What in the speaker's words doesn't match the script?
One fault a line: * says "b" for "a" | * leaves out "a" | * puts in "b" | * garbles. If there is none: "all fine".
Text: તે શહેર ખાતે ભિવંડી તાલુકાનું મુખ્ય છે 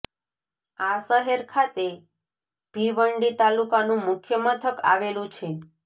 * says "આ" for "તે"
* puts in "મથક આવેલું"